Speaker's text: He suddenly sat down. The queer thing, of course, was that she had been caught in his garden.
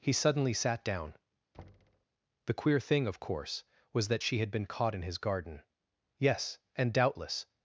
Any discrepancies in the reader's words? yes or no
yes